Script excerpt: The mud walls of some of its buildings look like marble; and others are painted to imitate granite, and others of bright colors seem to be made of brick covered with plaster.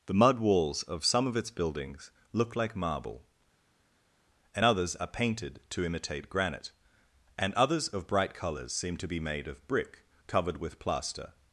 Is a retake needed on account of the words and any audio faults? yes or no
no